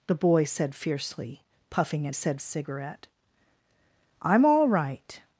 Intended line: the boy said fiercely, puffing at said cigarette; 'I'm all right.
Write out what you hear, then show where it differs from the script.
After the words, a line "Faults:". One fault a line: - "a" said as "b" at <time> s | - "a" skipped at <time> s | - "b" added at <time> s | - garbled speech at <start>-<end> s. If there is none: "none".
the boy said fiercely, puffing at said cigarette; 'I'm all right.
Faults:
none